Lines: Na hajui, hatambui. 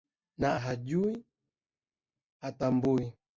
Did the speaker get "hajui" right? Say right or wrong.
right